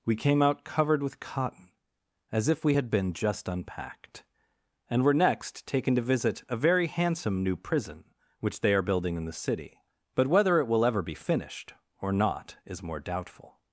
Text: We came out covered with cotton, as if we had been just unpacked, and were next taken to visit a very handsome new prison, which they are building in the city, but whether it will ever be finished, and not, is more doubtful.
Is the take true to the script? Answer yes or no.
no